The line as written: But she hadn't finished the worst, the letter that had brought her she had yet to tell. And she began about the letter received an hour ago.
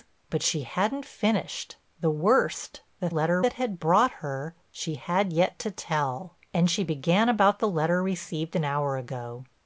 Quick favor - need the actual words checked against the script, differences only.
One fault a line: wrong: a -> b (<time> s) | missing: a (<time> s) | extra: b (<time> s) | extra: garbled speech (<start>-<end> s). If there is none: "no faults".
no faults